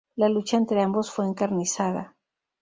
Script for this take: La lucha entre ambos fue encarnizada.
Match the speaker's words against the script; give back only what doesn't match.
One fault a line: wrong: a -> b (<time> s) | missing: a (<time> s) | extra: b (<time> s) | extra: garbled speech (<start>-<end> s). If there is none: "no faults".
no faults